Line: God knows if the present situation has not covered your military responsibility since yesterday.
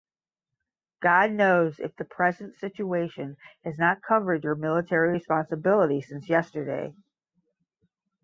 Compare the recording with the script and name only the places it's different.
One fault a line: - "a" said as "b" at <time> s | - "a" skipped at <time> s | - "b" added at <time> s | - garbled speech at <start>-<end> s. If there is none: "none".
none